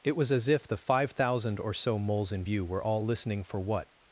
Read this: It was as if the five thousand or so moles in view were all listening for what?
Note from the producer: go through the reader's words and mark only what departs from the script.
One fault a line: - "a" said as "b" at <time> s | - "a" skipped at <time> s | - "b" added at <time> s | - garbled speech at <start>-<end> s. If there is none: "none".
none